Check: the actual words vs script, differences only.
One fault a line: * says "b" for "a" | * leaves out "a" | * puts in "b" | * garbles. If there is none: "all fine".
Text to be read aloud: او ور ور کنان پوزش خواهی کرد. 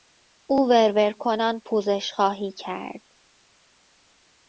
all fine